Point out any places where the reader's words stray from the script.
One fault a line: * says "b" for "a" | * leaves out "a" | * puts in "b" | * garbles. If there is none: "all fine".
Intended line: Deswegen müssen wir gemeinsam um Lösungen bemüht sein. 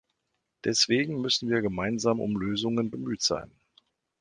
all fine